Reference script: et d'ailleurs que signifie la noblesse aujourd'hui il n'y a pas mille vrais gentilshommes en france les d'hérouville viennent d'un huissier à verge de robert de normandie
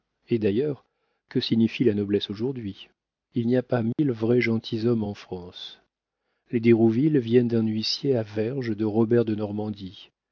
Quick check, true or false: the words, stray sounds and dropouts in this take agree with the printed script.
false